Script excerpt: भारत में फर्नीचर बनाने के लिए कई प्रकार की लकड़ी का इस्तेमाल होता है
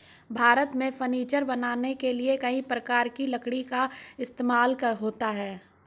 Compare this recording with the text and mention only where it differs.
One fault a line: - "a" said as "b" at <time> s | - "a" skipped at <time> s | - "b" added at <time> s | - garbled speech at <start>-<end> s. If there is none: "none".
none